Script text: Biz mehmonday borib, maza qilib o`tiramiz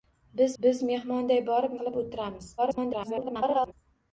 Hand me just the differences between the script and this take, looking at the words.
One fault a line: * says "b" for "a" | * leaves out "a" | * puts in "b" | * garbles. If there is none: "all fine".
* puts in "biz"
* leaves out "maza"
* garbles